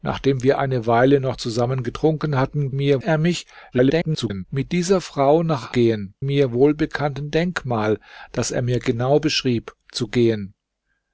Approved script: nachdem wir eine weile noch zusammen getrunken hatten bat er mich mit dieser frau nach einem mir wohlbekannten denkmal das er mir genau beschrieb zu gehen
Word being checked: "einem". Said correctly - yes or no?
no